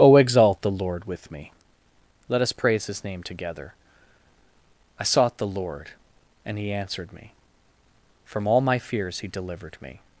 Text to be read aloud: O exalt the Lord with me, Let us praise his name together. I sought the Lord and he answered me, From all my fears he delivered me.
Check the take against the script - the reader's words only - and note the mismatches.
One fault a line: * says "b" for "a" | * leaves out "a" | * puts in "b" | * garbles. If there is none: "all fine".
all fine